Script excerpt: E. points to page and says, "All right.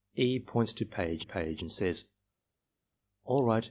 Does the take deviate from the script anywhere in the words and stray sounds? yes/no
yes